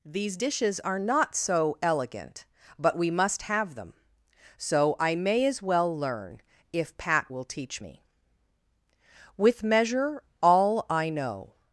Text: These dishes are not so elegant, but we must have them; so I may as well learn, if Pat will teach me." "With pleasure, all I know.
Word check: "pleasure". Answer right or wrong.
wrong